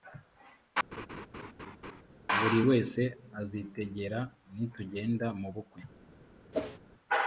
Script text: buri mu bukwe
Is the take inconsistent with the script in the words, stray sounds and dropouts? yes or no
yes